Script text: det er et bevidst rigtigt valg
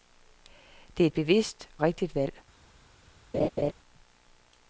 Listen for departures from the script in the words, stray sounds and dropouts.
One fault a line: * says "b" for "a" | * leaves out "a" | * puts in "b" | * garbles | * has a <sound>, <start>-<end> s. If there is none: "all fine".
* has a laugh, 3.3-3.7 s